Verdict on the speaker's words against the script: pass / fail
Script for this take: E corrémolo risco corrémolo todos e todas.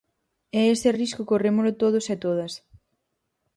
fail